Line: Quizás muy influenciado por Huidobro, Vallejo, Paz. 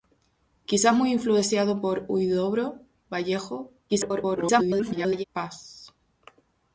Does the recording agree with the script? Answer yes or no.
no